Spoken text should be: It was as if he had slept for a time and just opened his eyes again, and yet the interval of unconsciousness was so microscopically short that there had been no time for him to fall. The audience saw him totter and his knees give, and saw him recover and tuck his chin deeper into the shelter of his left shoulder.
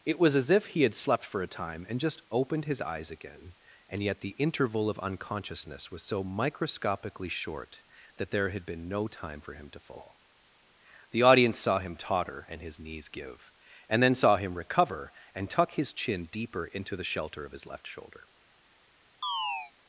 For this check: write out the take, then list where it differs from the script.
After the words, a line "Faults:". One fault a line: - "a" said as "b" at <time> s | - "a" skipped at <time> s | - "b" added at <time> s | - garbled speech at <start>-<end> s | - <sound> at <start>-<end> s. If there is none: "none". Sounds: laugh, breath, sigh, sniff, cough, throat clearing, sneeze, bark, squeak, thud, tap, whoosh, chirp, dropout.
It was as if he had slept for a time and just opened his eyes again, and yet the interval of unconsciousness was so microscopically short that there had been no time for him to fall. The audience saw him totter and his knees give, and then saw him recover and tuck his chin deeper into the shelter of his left shoulder.
Faults:
- "then" added at 14.0 s
- chirp at 19.2-19.7 s